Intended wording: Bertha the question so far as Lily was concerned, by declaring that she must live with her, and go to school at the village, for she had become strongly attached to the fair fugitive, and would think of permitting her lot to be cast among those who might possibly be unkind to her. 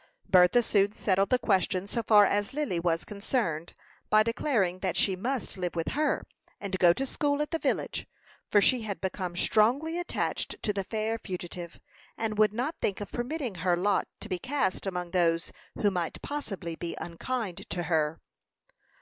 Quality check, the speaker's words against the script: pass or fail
fail